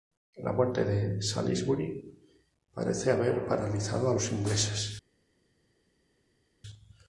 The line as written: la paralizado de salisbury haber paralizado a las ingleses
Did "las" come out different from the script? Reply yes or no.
yes